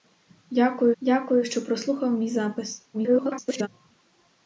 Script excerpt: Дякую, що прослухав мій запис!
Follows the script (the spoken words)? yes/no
no